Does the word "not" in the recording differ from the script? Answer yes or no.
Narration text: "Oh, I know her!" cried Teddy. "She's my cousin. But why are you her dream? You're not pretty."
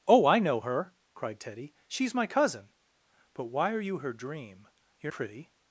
yes